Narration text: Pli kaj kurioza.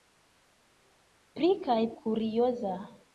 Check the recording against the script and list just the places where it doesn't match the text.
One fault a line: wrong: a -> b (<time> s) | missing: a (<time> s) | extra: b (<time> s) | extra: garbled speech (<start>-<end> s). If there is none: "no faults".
no faults